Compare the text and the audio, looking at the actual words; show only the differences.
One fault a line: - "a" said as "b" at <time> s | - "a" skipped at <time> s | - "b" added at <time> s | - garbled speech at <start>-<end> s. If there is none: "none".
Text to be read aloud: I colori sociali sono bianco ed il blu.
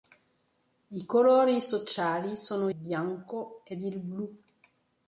none